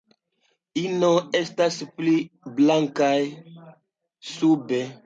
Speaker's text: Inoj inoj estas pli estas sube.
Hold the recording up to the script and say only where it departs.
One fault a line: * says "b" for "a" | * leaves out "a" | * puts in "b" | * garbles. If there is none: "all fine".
* leaves out "inoj"
* says "blankaj" for "estas"